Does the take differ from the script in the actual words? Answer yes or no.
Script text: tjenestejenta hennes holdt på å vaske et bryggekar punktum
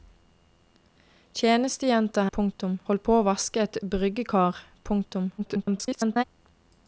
yes